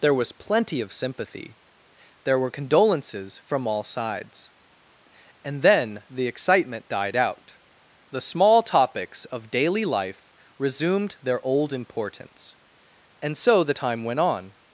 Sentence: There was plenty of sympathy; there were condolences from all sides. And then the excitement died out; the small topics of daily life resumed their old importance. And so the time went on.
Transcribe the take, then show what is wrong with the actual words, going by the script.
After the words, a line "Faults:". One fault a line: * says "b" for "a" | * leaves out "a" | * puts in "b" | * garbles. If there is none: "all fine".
There was plenty of sympathy; there were condolences from all sides. And then the excitement died out; the small topics of daily life resumed their old importance. And so the time went on.
Faults:
all fine